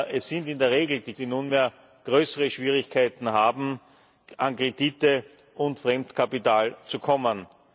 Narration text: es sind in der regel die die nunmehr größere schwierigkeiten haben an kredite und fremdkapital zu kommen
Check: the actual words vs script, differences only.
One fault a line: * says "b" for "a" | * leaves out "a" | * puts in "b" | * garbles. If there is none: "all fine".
all fine